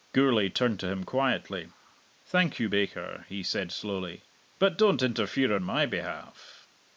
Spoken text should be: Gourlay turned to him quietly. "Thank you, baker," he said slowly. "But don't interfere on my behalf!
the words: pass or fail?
pass